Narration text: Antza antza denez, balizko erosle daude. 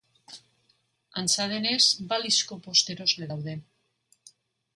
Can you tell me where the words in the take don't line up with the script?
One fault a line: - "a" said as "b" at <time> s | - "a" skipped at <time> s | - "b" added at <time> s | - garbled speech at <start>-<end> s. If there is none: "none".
- "antza" skipped at 1.4 s
- "bost" added at 2.7 s